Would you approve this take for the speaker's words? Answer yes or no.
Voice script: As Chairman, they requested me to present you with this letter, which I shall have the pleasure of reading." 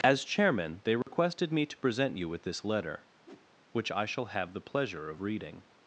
yes